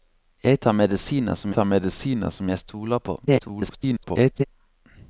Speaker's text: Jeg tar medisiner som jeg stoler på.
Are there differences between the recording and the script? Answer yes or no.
yes